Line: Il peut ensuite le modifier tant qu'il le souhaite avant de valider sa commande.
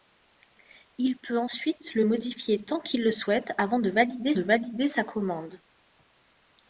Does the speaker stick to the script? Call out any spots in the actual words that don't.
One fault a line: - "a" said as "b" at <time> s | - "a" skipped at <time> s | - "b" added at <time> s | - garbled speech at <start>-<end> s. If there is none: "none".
- "de valider" added at 4.3 s